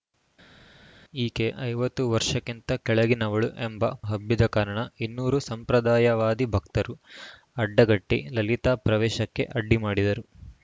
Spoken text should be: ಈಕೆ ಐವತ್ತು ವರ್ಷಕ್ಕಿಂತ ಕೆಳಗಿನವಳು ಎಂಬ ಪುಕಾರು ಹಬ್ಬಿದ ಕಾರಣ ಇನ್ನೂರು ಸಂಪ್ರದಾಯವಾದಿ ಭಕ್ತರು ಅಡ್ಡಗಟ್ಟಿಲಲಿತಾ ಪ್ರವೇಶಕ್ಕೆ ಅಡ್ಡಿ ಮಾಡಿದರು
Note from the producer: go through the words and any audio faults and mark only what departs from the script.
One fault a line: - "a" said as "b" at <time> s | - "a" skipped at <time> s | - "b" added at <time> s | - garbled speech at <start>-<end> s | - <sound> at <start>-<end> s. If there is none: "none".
- "ಪುಕಾರು" skipped at 3.8 s